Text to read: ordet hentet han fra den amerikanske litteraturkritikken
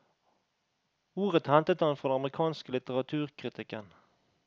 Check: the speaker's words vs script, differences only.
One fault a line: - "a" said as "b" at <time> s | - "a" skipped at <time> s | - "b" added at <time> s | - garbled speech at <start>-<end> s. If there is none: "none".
none